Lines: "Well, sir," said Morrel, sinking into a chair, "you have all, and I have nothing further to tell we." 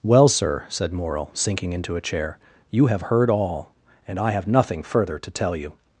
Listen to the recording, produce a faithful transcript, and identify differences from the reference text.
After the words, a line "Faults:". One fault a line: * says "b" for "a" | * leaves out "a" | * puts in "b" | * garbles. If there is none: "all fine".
"Well, sir," said Morrel, sinking into a chair, "you have heard all, and I have nothing further to tell you."
Faults:
* puts in "heard"
* says "you" for "we"